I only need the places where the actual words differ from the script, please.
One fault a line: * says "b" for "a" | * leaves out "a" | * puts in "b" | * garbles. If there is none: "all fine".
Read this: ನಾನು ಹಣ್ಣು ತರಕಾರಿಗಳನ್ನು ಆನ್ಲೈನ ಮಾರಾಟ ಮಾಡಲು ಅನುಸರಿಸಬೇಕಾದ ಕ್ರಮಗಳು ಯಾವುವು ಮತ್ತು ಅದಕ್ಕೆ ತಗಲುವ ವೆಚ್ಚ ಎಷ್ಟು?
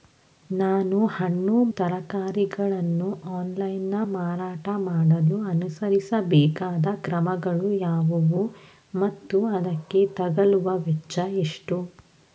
all fine